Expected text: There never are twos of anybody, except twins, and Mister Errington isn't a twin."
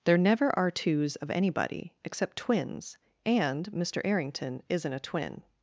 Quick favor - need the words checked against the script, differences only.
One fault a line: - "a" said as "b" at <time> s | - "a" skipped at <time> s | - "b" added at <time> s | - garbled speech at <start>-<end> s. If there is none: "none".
none